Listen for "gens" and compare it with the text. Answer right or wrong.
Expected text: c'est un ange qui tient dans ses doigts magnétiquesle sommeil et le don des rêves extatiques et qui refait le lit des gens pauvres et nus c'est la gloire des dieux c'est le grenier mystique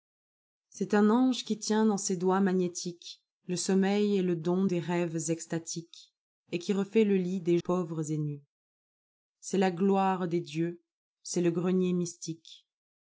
wrong